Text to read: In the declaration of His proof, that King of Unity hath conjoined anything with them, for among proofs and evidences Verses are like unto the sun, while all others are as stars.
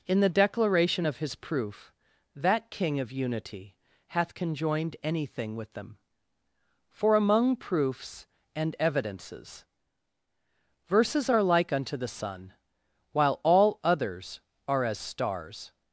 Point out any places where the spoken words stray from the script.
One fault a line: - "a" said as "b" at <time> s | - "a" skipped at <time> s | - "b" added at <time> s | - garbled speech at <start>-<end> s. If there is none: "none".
none